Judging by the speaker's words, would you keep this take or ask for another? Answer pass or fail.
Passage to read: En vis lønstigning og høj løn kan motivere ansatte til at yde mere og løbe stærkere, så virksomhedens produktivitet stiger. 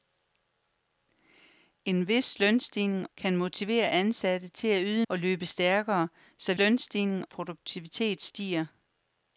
fail